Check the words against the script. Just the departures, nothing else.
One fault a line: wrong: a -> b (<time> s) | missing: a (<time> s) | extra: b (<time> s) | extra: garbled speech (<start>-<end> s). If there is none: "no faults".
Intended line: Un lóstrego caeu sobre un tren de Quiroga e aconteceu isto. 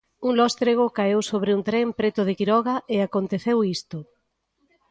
extra: preto (2.0 s)